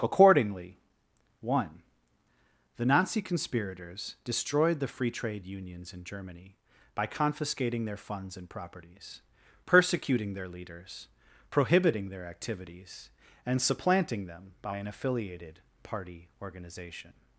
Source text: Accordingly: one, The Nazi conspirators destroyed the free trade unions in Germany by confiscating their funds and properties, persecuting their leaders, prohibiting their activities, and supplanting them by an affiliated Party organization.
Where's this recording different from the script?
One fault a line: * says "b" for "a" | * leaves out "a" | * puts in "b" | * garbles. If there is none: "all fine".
all fine